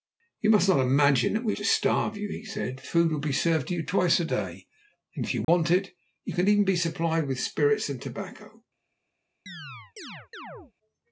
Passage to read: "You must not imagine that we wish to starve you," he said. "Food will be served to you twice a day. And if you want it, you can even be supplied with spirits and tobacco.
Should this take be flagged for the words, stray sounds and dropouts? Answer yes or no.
yes